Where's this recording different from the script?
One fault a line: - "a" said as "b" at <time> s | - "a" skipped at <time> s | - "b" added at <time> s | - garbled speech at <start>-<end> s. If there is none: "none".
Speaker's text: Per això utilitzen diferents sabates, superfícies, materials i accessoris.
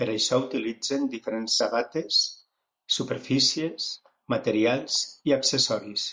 none